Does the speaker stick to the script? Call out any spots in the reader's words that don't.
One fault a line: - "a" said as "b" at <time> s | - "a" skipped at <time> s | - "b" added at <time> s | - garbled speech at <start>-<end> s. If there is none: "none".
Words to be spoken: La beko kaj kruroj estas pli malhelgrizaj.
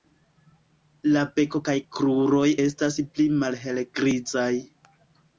none